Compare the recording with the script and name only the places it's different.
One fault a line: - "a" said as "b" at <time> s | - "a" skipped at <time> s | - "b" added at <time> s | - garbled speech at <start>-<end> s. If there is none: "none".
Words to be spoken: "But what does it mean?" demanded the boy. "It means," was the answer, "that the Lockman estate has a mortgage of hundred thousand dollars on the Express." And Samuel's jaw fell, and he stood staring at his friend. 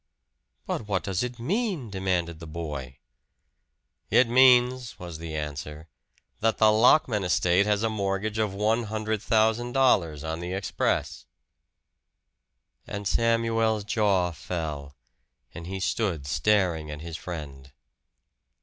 - "one" added at 8.5 s